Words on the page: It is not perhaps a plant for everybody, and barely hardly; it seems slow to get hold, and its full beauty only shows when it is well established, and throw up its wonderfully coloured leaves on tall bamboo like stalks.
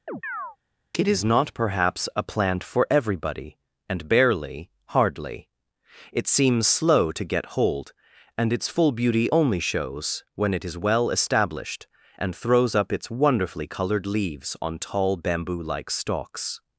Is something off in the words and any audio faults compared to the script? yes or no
yes